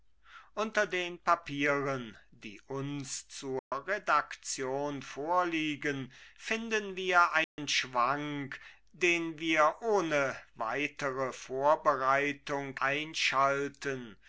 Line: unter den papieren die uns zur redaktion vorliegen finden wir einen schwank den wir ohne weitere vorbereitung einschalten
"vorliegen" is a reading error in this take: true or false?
false